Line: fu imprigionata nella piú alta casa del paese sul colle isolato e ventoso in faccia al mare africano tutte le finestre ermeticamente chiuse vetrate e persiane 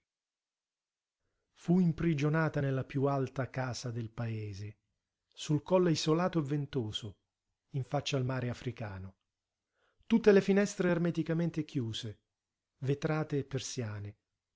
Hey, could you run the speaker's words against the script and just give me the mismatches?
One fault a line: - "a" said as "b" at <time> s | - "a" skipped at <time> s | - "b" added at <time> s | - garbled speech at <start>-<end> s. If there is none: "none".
none